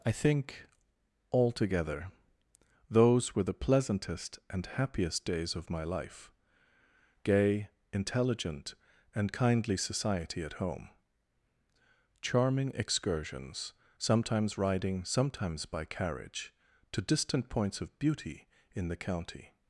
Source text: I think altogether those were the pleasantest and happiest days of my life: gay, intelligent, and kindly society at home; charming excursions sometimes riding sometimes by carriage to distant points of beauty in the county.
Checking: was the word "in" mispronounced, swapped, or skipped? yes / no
no